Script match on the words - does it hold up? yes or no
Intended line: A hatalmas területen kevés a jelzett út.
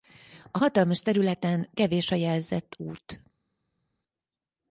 yes